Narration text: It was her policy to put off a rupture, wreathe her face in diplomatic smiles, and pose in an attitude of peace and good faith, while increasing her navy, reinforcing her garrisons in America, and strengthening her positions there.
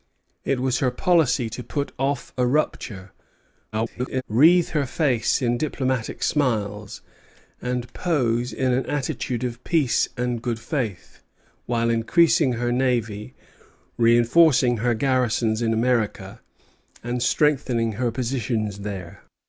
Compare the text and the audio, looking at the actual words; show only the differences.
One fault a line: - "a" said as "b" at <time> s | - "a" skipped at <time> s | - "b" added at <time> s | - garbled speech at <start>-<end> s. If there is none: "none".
- garbled speech at 3.7-4.2 s